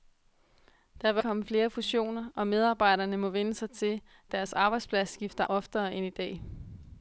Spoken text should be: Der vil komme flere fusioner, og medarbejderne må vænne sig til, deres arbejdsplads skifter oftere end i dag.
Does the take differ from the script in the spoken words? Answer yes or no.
no